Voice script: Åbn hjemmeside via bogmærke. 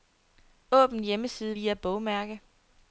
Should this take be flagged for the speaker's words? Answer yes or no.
no